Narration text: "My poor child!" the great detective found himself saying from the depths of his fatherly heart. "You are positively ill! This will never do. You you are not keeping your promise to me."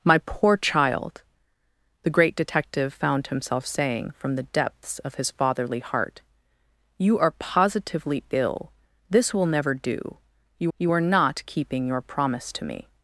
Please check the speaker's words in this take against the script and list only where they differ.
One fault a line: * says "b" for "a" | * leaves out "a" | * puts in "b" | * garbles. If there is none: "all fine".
all fine